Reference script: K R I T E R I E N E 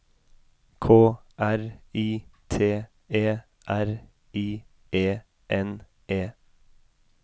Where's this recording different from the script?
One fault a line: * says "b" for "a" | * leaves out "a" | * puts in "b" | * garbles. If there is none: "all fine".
all fine